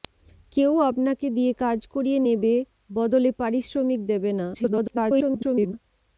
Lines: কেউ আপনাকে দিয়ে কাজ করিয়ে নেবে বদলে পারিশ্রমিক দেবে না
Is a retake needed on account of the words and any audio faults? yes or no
yes